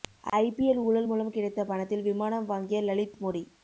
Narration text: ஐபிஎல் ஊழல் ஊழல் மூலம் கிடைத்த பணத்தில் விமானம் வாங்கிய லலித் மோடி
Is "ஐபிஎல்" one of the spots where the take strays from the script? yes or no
no